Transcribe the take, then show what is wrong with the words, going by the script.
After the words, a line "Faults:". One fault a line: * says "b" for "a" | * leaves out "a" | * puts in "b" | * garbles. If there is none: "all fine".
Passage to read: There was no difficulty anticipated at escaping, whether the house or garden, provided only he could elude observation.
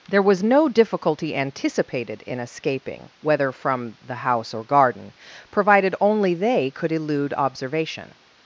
There was no difficulty anticipated in escaping, whether from the house or garden, provided only they could elude observation.
Faults:
* says "in" for "at"
* puts in "from"
* says "they" for "he"